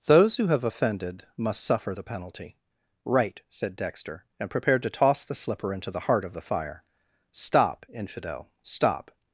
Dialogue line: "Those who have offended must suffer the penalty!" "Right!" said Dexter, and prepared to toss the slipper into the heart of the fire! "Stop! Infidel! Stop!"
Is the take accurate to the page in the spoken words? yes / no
yes